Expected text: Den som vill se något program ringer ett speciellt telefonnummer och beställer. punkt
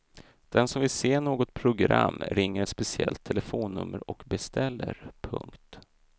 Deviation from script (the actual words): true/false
false